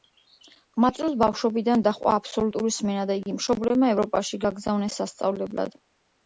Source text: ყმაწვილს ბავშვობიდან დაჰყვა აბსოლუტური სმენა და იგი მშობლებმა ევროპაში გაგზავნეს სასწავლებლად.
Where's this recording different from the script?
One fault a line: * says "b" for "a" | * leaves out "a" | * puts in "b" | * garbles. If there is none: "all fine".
all fine